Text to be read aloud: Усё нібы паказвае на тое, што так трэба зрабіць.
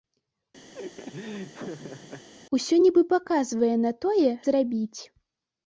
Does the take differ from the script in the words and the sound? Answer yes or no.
yes